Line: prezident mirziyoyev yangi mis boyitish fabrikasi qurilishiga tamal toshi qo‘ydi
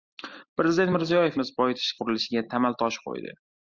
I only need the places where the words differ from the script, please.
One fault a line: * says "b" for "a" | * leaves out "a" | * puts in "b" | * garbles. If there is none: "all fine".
* leaves out "yangi"
* leaves out "fabrikasi"